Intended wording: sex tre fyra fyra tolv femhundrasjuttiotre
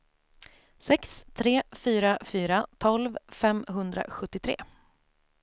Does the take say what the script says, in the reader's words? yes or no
yes